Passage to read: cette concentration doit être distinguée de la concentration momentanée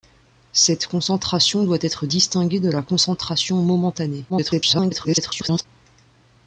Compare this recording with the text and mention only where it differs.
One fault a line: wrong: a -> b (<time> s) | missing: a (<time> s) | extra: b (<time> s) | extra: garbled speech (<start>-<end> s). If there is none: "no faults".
extra: garbled speech (4.3-5.7 s)